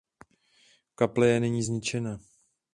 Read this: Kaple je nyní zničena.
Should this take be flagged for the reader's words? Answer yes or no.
no